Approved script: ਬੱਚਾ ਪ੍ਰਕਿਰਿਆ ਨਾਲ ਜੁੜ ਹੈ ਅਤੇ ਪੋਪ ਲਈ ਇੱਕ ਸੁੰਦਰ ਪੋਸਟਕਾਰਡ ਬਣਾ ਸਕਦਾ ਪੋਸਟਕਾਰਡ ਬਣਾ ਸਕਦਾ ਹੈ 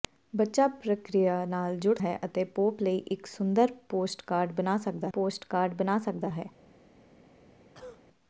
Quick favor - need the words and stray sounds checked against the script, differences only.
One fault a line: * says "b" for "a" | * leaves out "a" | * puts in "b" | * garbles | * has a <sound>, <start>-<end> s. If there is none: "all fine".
* has a cough, 7.7-8.0 s